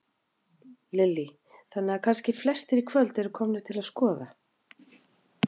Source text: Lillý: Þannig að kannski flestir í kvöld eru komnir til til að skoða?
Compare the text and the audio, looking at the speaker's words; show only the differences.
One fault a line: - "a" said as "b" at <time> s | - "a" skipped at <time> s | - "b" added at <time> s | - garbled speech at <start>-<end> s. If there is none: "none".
- "til" skipped at 3.8 s